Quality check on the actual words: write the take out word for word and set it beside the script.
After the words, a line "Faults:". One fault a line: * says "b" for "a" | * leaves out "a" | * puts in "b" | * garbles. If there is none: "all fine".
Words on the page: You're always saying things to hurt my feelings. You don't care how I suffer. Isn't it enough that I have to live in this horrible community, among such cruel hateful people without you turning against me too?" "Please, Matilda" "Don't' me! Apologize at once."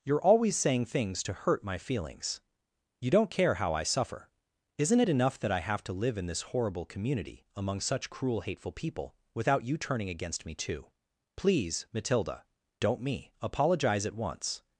You're always saying things to hurt my feelings. You don't care how I suffer. Isn't it enough that I have to live in this horrible community, among such cruel hateful people without you turning against me too?" "Please, Matilda" "Don't' me! Apologize at once."
Faults:
all fine